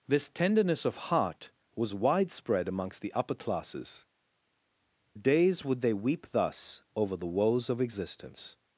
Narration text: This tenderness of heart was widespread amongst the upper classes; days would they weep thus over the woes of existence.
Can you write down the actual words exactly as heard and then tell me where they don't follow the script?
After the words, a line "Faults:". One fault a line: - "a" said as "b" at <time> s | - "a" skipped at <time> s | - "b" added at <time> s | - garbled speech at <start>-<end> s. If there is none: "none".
This tenderness of heart was widespread amongst the upper classes; days would they weep thus over the woes of existence.
Faults:
none